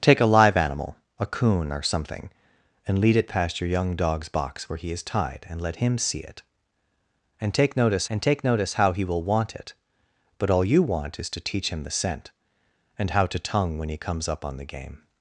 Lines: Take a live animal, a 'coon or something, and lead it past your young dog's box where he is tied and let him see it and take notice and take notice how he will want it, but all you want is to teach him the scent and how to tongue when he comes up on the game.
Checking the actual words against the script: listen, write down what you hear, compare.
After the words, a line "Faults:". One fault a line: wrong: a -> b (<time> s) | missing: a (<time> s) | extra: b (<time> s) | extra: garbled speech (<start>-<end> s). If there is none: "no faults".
Take a live animal, a 'coon or something, and lead it past your young dog's box where he is tied and let him see it and take notice and take notice how he will want it, but all you want is to teach him the scent and how to tongue when he comes up on the game.
Faults:
no faults